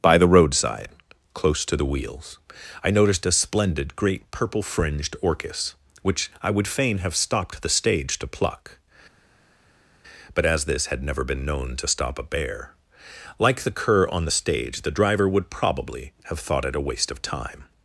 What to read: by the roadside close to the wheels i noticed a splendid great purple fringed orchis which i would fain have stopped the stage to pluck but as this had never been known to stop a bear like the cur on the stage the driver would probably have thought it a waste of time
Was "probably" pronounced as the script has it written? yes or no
yes